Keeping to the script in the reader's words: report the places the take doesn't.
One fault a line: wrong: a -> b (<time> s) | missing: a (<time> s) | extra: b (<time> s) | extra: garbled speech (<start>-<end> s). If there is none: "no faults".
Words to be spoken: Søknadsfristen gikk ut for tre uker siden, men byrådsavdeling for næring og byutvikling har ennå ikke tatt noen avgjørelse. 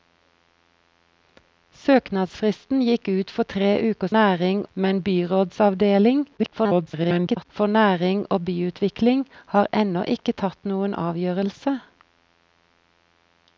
wrong: siden -> næring (4.2 s)
extra: garbled speech (6.4-7.5 s)